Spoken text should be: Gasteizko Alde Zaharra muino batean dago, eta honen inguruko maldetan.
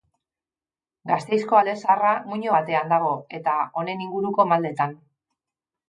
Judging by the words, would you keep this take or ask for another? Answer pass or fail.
pass